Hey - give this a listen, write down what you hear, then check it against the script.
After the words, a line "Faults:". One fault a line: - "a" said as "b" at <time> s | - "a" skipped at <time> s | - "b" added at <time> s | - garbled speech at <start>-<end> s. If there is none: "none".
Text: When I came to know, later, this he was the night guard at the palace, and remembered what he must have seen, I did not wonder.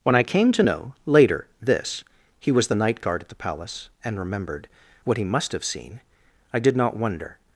When I came to know, later, this he was the night guard at the palace, and remembered what he must have seen, I did not wonder.
Faults:
none